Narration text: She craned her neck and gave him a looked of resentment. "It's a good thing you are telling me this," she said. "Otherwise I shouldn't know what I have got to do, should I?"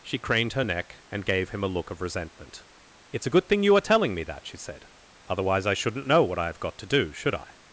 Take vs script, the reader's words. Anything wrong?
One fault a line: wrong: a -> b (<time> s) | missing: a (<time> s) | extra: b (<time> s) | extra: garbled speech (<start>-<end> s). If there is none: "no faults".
wrong: looked -> look (1.7 s)
wrong: this -> that (4.2 s)